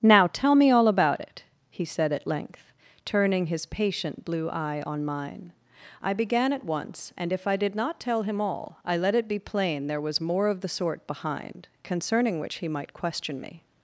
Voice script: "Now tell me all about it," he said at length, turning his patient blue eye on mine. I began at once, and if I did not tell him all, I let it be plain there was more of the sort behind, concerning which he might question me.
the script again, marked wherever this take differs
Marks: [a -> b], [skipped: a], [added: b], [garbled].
"Now tell me all about it," he said at length, turning his patient blue eye on mine. I began at once, and if I did not tell him all, I let it be plain there was more of the sort behind, concerning which he might question me.